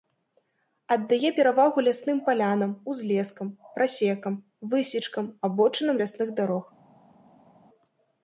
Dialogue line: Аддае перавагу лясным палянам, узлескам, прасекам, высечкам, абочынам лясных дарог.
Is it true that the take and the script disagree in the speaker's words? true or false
false